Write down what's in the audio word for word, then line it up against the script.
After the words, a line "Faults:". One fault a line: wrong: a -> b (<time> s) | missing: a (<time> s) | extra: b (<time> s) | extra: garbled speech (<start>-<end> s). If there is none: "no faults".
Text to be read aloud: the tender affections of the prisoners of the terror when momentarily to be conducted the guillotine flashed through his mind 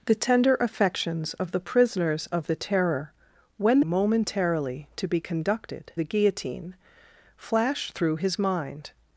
the tender affections of the prisoners of the terror when momentarily to be conducted the guillotine flashed through his mind
Faults:
no faults